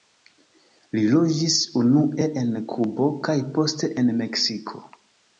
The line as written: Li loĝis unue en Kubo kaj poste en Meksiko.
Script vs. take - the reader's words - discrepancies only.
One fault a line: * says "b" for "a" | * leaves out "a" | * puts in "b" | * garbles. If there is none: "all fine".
all fine